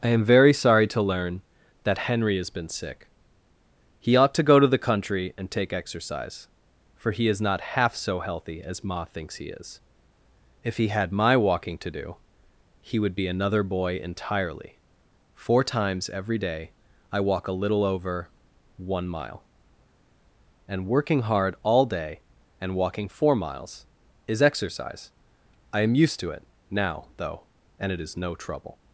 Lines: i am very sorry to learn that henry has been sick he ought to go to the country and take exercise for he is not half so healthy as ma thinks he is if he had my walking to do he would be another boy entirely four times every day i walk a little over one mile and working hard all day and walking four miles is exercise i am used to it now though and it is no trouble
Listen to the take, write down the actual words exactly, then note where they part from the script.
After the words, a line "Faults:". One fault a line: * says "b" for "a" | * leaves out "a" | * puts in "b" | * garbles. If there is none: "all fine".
i am very sorry to learn that henry has been sick he ought to go to the country and take exercise for he is not half so healthy as ma thinks he is if he had my walking to do he would be another boy entirely four times every day i walk a little over one mile and working hard all day and walking four miles is exercise i am used to it now though and it is no trouble
Faults:
all fine